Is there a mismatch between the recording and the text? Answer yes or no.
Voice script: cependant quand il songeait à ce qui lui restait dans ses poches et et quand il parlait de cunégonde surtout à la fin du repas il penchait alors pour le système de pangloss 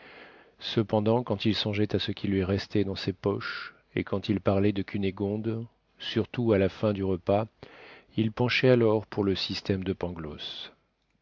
yes